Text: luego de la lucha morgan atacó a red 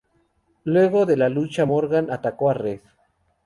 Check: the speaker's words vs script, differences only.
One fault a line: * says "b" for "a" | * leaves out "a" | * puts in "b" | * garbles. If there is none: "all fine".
all fine